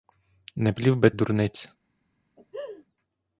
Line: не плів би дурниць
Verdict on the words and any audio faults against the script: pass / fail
fail